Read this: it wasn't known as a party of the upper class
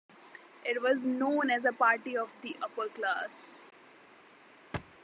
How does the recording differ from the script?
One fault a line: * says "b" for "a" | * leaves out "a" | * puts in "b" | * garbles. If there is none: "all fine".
* says "was" for "wasn't"